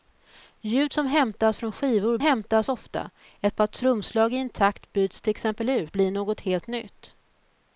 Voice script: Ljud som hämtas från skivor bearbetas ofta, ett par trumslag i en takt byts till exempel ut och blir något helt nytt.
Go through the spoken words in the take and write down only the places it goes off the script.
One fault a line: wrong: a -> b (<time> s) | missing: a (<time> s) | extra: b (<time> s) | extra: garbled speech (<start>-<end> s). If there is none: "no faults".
wrong: bearbetas -> hämtas (2.2 s)
missing: och (6.0 s)